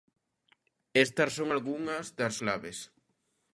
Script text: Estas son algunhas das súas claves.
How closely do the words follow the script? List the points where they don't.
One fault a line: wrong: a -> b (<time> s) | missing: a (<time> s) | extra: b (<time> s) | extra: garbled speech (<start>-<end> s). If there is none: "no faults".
missing: súas (2.3 s)